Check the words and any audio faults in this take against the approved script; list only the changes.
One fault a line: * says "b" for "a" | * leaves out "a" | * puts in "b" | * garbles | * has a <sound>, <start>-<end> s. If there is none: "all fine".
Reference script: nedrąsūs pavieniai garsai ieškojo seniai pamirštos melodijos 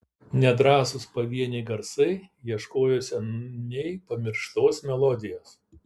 all fine